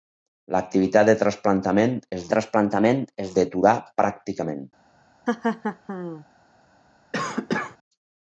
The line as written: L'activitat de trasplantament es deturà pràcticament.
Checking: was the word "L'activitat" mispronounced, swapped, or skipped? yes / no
no